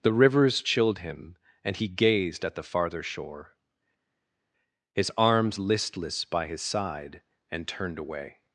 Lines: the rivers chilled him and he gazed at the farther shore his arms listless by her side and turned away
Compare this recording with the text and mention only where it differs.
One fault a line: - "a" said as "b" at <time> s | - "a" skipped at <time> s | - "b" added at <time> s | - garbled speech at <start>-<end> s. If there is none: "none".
- "her" said as "his" at 6.5 s